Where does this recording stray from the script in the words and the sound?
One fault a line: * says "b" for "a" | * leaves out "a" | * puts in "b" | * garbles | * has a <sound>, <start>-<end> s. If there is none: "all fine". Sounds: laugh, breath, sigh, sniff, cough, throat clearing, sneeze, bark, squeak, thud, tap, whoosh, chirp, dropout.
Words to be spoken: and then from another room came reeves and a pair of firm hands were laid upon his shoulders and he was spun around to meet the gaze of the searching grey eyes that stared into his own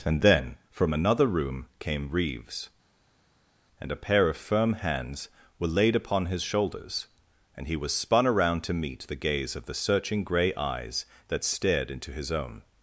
all fine